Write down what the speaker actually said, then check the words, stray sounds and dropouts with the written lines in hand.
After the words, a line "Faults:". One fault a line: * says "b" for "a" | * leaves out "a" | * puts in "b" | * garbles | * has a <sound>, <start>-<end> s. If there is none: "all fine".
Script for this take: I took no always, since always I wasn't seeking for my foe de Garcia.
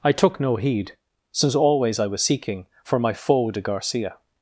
I took no heed, since always I was seeking for my foe de Garcia.
Faults:
* says "heed" for "always"
* says "was" for "wasn't"